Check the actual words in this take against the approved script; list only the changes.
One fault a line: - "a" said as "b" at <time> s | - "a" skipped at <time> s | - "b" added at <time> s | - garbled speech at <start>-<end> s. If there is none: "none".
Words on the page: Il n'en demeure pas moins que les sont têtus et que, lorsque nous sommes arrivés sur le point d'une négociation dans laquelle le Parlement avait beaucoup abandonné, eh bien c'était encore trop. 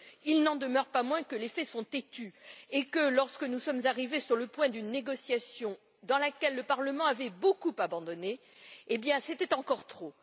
- "faits" added at 1.5 s